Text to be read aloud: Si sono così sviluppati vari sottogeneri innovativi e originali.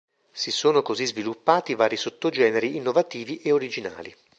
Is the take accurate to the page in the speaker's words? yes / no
yes